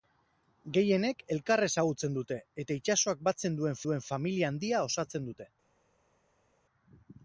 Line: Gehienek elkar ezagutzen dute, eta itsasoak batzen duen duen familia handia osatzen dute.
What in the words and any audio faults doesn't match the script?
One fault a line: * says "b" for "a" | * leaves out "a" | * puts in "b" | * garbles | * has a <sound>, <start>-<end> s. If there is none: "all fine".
all fine